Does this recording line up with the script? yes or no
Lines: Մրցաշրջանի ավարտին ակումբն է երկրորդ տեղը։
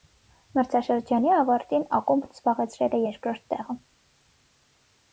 no